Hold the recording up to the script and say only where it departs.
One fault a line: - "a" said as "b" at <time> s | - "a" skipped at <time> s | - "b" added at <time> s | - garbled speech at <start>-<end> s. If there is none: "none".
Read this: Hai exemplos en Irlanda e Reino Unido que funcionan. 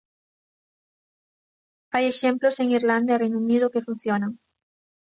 none